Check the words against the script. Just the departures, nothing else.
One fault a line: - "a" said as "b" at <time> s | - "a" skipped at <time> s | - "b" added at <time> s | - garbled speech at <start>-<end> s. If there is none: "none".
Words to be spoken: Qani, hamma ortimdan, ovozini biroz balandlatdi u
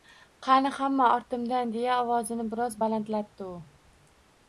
- "deya" added at 1.8 s